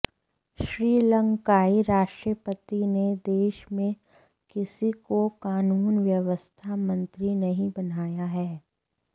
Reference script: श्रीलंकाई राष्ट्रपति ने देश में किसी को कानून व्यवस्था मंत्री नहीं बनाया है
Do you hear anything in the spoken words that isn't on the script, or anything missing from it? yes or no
no